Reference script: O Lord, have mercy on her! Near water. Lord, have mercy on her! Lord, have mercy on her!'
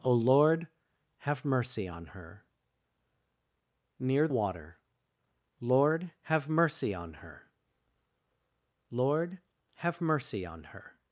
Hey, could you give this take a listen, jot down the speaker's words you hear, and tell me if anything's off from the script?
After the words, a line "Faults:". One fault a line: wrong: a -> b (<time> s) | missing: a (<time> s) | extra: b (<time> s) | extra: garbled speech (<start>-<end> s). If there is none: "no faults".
O Lord, have mercy on her! Near water. Lord, have mercy on her! Lord, have mercy on her!'
Faults:
no faults